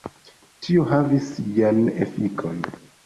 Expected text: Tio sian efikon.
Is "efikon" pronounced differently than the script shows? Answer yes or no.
no